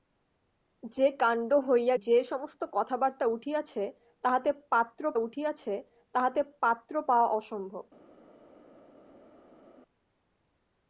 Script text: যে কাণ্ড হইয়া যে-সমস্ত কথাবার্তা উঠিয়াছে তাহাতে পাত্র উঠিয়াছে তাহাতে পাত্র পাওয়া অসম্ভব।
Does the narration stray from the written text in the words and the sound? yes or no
no